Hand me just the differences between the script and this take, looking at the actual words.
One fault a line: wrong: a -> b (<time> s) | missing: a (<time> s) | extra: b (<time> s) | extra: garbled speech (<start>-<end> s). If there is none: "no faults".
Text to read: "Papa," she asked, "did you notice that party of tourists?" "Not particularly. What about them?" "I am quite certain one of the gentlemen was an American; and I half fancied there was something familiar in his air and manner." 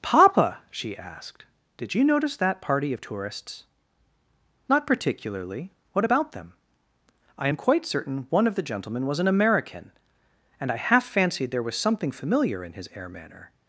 missing: and (13.1 s)